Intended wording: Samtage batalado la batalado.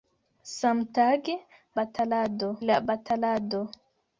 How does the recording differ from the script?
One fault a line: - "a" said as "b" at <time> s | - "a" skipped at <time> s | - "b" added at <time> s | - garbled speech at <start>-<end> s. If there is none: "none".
none